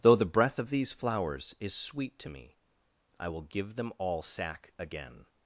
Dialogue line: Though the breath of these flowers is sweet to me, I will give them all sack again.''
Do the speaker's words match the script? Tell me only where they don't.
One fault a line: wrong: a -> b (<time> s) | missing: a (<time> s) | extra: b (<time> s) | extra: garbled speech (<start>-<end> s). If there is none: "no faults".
no faults